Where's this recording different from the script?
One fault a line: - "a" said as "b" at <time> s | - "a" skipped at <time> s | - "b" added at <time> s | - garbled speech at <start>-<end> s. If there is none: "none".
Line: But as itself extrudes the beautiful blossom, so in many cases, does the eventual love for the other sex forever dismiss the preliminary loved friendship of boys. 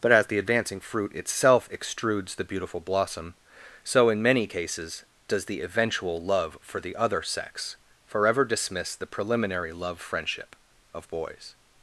- "the advancing fruit" added at 0.3 s
- "loved" said as "love" at 9.7 s